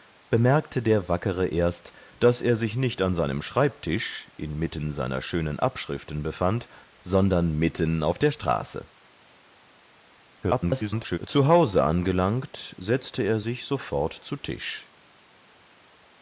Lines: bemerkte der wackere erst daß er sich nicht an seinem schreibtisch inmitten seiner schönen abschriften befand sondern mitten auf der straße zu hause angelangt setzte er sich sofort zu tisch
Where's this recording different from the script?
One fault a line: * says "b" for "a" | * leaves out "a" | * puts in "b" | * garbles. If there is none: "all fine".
* garbles